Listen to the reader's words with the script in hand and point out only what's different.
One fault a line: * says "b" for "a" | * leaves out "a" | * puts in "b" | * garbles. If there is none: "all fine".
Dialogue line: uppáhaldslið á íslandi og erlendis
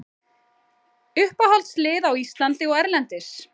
all fine